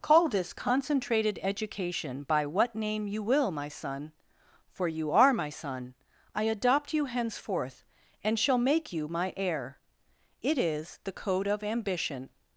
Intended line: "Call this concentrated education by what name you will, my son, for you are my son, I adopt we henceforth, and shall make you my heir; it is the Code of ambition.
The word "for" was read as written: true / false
true